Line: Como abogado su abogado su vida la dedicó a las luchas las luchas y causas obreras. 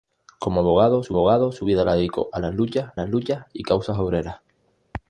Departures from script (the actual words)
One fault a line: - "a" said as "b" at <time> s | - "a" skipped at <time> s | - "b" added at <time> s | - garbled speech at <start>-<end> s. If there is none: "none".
none